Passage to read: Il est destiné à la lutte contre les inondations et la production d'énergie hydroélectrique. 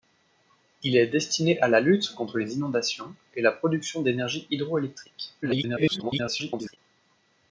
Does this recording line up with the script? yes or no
no